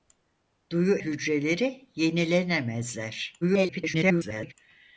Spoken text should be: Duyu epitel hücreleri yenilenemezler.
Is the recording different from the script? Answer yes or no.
yes